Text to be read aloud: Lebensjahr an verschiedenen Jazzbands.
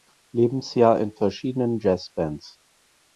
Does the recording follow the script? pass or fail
fail